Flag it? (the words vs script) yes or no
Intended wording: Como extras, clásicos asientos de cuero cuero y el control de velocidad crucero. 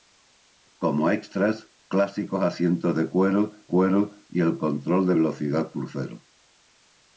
no